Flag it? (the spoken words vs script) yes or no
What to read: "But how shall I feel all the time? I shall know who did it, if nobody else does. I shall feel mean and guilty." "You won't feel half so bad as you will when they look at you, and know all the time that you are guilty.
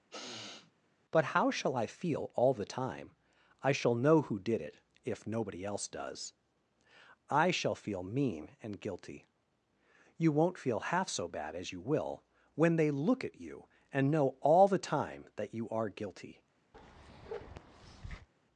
no